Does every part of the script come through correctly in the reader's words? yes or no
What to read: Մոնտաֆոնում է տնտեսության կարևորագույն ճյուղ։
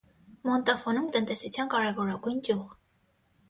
yes